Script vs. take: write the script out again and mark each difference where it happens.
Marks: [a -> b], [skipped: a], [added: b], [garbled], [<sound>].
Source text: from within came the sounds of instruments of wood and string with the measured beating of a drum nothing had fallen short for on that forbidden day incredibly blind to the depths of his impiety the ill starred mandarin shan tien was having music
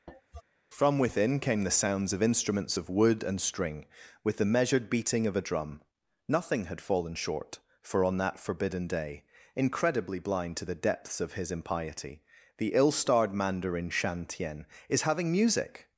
[cough] from within came the sounds of instruments of wood and string with the measured beating of a drum nothing had fallen short for on that forbidden day incredibly blind to the depths of his impiety the ill starred mandarin shan tien [was -> is] having music